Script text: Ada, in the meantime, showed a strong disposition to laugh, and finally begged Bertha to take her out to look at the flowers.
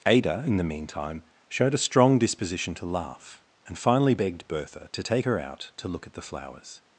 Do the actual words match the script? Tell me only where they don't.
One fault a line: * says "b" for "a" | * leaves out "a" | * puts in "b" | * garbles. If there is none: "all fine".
all fine